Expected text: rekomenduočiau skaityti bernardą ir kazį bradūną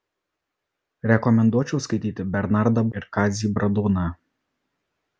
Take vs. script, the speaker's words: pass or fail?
pass